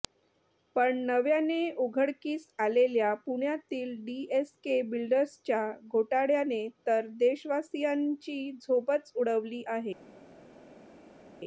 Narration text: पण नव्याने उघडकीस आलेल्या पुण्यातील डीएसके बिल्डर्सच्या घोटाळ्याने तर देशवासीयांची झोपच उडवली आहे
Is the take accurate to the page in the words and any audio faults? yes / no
yes